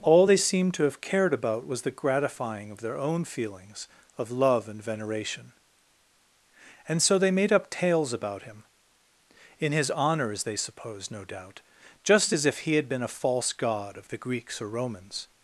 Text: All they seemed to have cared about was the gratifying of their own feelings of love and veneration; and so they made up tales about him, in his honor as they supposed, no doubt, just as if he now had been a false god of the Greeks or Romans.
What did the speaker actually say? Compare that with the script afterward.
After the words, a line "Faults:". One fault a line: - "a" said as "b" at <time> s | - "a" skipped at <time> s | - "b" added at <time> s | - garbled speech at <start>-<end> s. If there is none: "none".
All they seemed to have cared about was the gratifying of their own feelings of love and veneration; and so they made up tales about him, in his honor as they supposed, no doubt, just as if he had been a false god of the Greeks or Romans.
Faults:
- "now" skipped at 12.8 s